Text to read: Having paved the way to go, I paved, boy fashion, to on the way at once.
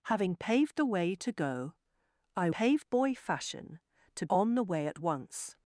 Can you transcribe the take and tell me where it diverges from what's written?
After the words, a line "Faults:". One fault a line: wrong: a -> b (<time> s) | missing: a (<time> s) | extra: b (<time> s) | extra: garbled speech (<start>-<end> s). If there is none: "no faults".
Having paved the way to go, I paved, boy fashion, to on the way at once.
Faults:
no faults